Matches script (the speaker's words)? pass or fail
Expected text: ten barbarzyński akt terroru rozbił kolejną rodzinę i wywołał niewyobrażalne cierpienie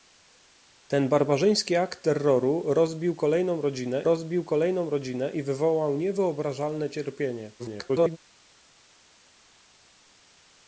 fail